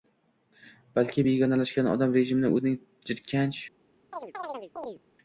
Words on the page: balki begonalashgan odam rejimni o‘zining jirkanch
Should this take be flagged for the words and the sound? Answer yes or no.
yes